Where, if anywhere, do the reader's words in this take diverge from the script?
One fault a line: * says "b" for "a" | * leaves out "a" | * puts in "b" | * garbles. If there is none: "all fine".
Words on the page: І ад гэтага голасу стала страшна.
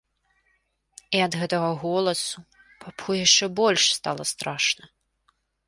* puts in "папу яшчэ больш"